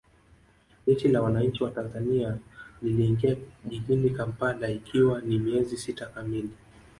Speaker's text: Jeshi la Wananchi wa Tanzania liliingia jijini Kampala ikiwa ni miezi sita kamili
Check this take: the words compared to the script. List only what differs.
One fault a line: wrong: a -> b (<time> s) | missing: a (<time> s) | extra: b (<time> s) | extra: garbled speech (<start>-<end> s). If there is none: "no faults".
no faults